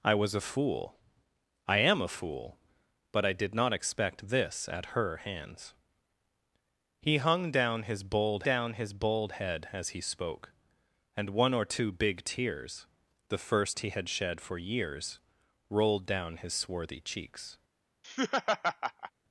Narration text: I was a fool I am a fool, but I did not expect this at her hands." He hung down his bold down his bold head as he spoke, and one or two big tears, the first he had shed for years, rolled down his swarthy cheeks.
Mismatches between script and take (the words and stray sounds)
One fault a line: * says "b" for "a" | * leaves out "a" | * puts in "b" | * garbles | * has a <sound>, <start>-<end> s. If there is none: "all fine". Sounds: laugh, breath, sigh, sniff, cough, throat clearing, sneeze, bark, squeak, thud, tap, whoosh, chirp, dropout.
* has a laugh, 18.0-19.1 s